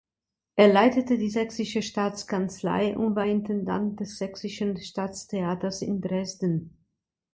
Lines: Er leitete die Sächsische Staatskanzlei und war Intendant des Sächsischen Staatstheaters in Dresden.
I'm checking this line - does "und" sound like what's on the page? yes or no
yes